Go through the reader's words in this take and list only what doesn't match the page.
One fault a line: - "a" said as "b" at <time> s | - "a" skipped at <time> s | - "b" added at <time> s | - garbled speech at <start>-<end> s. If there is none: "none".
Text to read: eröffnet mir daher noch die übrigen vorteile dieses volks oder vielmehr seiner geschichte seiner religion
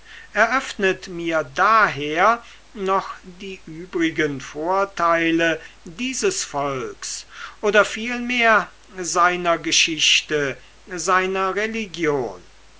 none